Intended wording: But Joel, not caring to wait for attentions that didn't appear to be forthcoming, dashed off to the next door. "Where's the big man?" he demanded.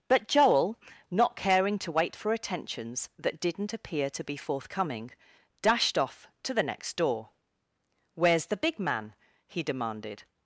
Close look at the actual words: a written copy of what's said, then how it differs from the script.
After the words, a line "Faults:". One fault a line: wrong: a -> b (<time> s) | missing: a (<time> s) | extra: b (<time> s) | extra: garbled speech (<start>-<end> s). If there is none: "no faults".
But Joel, not caring to wait for attentions that didn't appear to be forthcoming, dashed off to the next door. "Where's the big man?" he demanded.
Faults:
no faults